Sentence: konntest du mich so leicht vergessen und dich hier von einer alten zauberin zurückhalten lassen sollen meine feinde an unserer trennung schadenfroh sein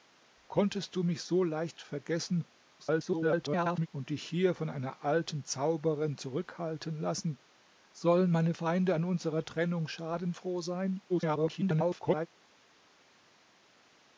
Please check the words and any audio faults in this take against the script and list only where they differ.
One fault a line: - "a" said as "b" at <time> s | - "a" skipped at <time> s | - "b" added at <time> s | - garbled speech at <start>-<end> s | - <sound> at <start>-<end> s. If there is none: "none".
- garbled speech at 2.8-3.9 s
- garbled speech at 11.1-12.3 s